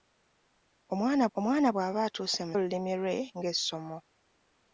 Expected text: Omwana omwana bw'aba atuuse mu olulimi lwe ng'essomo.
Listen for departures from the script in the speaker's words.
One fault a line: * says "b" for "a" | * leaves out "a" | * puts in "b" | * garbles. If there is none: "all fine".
all fine